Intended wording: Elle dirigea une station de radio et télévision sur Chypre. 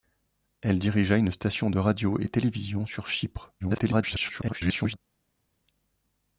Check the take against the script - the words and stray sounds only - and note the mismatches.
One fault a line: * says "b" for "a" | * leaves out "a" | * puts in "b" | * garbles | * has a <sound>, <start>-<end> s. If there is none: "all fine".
* garbles